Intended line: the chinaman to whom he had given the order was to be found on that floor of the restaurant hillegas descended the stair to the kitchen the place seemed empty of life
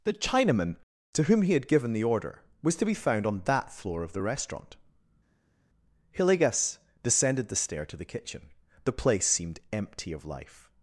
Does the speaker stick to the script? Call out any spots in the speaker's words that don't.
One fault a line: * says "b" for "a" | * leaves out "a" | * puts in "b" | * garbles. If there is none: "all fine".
all fine